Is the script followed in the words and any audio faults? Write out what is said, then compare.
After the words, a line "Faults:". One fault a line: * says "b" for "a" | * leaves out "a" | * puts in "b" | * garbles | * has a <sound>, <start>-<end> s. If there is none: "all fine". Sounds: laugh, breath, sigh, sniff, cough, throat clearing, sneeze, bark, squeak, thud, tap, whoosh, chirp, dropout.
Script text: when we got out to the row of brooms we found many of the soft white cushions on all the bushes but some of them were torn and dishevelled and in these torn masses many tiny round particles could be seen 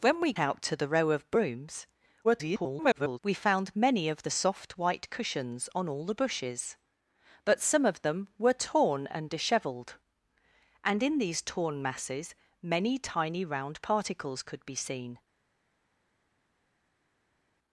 when we out to the row of brooms [garbled] we found many of the soft white cushions on all the bushes but some of them were torn and dishevelled and in these torn masses many tiny round particles could be seen
Faults:
* leaves out "got"
* garbles